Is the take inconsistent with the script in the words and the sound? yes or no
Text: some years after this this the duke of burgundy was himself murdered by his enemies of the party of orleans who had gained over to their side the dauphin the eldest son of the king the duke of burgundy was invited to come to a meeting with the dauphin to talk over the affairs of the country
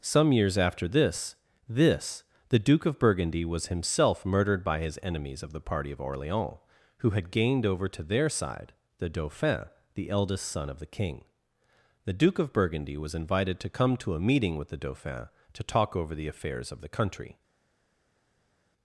no